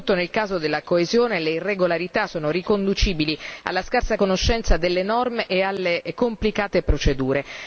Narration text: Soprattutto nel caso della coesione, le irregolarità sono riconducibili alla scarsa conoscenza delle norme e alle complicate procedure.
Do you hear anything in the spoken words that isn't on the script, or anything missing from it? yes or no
no